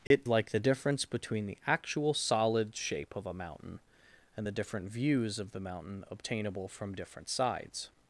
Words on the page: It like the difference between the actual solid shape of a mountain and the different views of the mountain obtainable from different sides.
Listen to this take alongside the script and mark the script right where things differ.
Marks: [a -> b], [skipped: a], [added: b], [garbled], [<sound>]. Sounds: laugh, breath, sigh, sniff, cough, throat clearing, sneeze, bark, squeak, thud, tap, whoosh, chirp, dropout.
It [dropout] like the difference between the actual solid shape of a mountain and the different views of the mountain obtainable from different sides.